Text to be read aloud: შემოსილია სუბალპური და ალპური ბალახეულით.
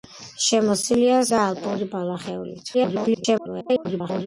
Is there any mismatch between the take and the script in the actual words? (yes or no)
yes